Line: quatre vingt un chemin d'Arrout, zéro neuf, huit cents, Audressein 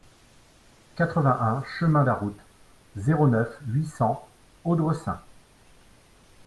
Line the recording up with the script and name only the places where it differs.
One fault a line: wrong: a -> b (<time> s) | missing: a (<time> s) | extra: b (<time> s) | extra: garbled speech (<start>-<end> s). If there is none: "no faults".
no faults